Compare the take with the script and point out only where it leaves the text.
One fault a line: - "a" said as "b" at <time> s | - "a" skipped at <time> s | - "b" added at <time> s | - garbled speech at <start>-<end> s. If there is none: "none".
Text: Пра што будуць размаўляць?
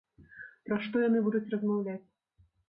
- "яны" added at 1.1 s